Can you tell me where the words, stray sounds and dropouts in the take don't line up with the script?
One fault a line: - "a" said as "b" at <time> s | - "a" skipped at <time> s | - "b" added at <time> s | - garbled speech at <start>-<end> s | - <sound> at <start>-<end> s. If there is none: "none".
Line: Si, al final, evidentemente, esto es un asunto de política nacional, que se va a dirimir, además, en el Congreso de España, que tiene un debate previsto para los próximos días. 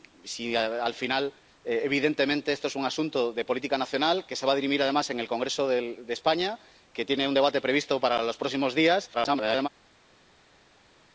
- garbled speech at 9.1-9.7 s